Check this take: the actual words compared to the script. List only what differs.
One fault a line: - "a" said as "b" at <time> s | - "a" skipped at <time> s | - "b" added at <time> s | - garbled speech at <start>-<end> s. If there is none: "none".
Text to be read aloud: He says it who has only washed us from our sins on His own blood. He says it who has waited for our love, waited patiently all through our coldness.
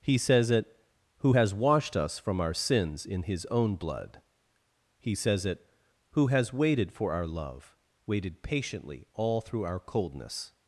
- "only" skipped at 1.5 s
- "on" said as "in" at 3.0 s